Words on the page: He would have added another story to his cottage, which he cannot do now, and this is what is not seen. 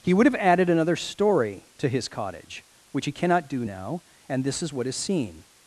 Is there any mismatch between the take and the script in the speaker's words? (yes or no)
yes